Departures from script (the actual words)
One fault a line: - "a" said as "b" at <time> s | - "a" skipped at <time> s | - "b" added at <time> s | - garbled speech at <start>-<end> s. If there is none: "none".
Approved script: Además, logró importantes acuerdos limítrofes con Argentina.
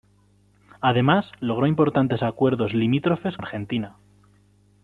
- "con" skipped at 3.4 s